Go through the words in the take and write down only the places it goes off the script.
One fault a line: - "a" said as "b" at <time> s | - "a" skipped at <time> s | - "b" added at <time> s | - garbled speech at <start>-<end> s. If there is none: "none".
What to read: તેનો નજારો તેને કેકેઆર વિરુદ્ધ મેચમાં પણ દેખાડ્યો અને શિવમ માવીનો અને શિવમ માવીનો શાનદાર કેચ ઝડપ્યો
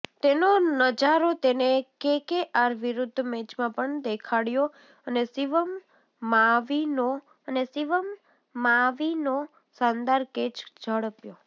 none